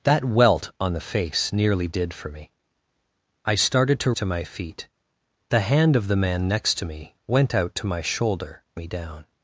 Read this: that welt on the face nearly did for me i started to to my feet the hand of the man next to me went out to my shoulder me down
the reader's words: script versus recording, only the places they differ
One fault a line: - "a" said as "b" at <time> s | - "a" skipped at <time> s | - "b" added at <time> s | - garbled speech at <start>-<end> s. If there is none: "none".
none